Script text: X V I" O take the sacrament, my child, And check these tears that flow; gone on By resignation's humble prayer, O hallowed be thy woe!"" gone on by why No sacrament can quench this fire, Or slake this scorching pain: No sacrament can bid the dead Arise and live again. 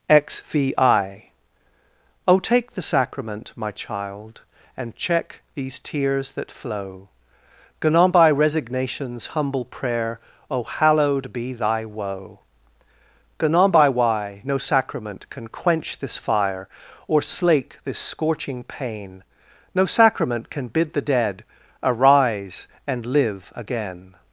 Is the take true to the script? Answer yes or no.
yes